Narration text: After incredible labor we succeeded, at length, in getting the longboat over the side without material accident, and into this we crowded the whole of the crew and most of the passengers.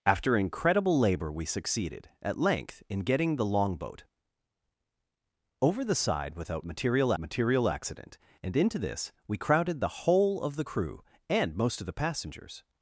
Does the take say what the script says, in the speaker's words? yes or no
no